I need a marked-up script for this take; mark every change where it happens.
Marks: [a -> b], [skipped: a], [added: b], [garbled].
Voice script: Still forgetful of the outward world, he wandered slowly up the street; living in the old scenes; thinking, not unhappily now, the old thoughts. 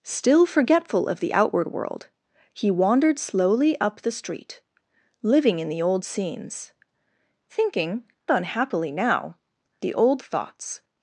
Still forgetful of the outward world, he wandered slowly up the street; living in the old scenes; thinking, [skipped: not] unhappily now, the old thoughts.